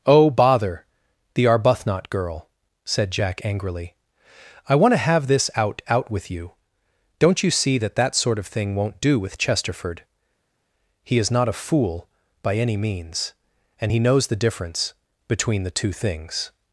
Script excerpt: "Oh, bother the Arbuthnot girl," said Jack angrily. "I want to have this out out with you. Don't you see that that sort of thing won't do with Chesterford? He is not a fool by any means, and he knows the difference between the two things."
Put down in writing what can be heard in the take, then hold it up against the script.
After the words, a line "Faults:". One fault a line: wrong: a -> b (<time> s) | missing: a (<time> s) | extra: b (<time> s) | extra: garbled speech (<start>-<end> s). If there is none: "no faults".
"Oh, bother the Arbuthnot girl," said Jack angrily. "I want to have this out out with you. Don't you see that that sort of thing won't do with Chesterford? He is not a fool by any means, and he knows the difference between the two things."
Faults:
no faults